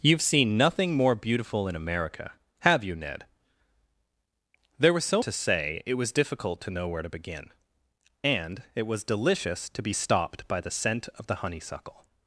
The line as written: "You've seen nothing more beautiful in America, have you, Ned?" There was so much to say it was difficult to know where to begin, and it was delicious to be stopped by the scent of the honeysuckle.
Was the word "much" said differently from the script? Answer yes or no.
yes